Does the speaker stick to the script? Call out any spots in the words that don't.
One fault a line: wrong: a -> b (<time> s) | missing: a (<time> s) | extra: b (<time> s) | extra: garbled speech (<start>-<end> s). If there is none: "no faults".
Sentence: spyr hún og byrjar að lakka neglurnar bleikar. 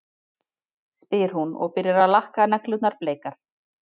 no faults